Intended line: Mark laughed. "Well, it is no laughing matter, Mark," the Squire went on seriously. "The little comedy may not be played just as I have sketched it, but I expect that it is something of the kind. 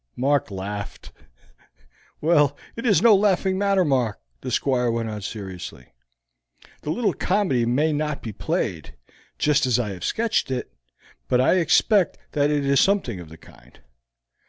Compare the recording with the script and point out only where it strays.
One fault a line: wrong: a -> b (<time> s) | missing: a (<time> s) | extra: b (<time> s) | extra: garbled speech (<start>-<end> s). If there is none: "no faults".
no faults